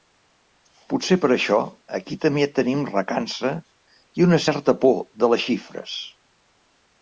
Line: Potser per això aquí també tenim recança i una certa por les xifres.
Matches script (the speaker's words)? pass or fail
fail